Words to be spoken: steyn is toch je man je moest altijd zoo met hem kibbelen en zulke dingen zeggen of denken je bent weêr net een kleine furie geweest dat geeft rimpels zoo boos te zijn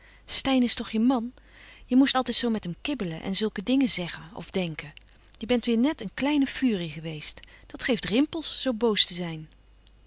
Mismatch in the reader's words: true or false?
false